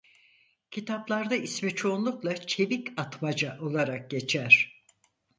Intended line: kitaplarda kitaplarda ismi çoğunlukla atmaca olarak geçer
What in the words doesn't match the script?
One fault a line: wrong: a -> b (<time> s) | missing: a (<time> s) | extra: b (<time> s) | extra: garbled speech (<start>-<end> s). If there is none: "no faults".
missing: kitaplarda (1.4 s)
extra: çevik (2.4 s)